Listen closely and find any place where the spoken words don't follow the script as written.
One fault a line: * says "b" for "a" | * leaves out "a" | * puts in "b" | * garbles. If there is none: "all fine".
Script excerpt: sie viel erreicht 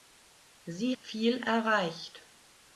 all fine